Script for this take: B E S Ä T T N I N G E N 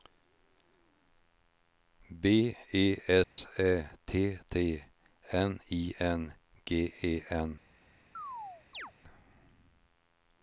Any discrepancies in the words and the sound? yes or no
yes